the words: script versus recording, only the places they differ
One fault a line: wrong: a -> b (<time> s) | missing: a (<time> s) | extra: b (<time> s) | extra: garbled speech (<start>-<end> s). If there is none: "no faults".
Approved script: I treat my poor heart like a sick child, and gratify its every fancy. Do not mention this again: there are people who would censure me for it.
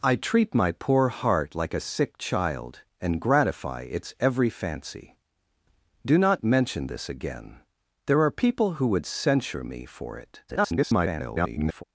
extra: garbled speech (10.5-11.8 s)